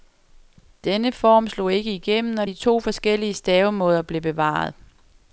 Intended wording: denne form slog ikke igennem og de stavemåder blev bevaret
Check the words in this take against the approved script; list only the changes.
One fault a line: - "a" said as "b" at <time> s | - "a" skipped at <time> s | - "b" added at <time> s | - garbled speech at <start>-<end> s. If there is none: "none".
- "to forskellige" added at 2.5 s